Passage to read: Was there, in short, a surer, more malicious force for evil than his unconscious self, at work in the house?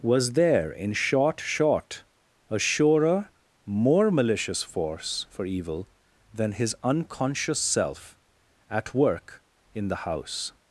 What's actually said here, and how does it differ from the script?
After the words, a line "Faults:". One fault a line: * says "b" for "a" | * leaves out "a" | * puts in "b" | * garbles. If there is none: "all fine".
Was there, in short short, a surer, more malicious force for evil than his unconscious self, at work in the house?
Faults:
* puts in "short"